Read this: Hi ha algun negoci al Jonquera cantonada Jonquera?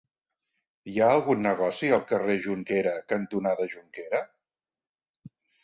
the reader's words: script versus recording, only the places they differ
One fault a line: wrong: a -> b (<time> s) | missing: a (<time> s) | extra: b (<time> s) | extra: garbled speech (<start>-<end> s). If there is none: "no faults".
extra: carrer (2.1 s)